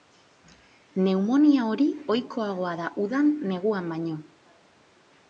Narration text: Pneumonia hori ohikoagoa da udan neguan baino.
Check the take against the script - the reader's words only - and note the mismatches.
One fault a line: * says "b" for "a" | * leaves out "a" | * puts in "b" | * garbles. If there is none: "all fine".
all fine